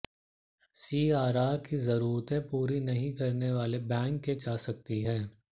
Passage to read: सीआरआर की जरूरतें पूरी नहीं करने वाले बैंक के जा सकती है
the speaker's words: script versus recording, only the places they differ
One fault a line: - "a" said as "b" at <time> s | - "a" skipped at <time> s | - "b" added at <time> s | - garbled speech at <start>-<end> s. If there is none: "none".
none